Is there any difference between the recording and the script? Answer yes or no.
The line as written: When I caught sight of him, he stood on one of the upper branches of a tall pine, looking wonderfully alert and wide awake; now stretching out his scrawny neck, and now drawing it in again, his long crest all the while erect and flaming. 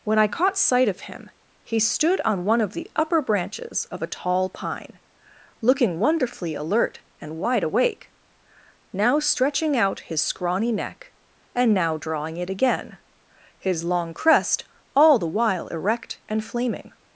yes